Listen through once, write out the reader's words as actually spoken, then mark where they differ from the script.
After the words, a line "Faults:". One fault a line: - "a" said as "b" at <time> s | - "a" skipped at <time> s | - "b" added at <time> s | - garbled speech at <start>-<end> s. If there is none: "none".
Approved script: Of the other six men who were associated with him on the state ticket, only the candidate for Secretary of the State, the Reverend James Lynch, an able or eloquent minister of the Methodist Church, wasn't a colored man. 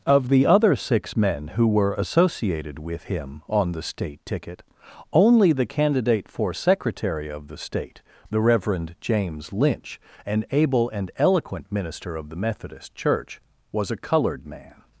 Of the other six men who were associated with him on the state ticket, only the candidate for Secretary of the State, the Reverend James Lynch, an able and eloquent minister of the Methodist Church, was a colored man.
Faults:
- "or" said as "and" at 10.9 s
- "wasn't" said as "was" at 13.7 s